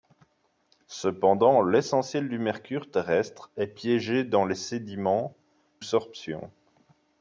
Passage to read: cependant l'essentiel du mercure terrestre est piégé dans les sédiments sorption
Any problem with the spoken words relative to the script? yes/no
no